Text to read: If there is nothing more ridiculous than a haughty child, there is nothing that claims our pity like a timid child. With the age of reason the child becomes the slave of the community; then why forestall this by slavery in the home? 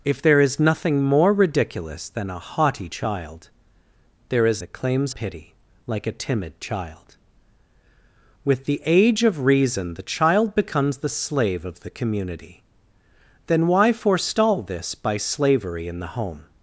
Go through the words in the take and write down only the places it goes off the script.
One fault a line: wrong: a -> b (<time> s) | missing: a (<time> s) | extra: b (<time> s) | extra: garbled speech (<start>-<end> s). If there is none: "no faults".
missing: nothing (4.6 s)
missing: our (5.1 s)